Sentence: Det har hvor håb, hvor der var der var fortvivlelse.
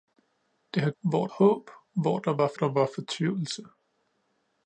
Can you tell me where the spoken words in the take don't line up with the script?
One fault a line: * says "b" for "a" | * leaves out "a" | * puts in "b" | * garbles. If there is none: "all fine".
all fine